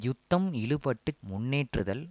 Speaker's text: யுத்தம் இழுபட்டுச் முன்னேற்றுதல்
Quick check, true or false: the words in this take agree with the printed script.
true